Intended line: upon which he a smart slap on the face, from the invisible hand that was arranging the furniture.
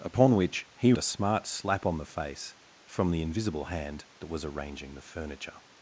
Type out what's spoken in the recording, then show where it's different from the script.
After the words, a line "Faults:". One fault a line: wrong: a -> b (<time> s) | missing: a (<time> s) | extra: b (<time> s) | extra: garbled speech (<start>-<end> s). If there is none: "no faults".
upon which he a smart slap on the face, from the invisible hand that was arranging the furniture.
Faults:
no faults